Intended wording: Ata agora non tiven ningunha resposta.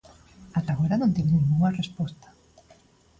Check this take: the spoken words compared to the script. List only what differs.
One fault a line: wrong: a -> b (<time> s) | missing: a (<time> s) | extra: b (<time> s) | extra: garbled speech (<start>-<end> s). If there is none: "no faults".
no faults